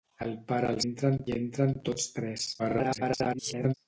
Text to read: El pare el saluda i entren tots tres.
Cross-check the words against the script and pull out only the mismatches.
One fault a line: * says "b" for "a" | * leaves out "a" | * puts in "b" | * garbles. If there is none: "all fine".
* says "entren" for "saluda"
* garbles